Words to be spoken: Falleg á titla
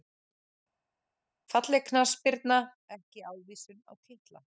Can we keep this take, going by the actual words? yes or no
no